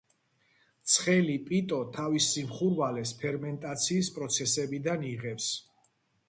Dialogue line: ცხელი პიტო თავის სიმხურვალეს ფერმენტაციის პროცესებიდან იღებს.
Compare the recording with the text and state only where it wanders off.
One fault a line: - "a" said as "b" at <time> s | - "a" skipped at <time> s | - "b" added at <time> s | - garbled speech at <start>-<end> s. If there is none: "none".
none